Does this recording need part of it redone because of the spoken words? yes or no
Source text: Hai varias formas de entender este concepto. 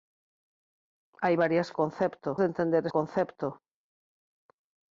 yes